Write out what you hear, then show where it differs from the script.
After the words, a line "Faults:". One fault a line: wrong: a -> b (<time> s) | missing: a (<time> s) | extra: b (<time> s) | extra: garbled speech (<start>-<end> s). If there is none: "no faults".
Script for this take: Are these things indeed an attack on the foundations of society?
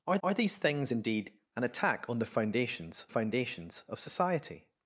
Are are these things indeed an attack on the foundations foundations of society?
Faults:
extra: are (0.2 s)
extra: foundations (3.1 s)